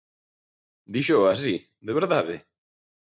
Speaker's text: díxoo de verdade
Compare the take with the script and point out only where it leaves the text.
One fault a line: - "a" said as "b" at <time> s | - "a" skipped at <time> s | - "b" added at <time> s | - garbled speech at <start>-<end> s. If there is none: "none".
- "así" added at 1.3 s